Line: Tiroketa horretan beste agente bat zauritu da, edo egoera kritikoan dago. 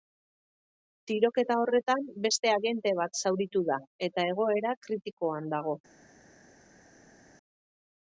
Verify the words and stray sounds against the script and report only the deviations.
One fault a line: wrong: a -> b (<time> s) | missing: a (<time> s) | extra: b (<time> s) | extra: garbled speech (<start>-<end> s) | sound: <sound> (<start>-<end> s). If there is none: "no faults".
wrong: edo -> eta (4.1 s)